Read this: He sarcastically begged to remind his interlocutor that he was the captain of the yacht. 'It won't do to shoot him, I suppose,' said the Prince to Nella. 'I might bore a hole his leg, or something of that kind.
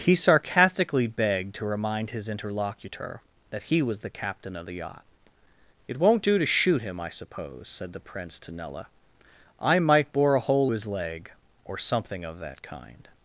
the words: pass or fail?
pass